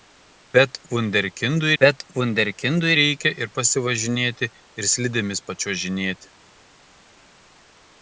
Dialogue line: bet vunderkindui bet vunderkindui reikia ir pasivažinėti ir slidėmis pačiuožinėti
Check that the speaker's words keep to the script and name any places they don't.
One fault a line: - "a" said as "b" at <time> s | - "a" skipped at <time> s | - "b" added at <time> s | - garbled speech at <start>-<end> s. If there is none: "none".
none